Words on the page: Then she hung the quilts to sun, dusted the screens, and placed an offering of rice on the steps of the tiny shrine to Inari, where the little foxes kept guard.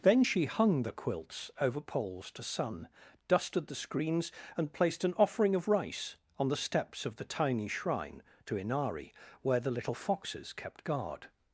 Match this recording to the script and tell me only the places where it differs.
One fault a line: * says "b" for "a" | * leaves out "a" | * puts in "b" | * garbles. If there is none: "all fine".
* puts in "over poles"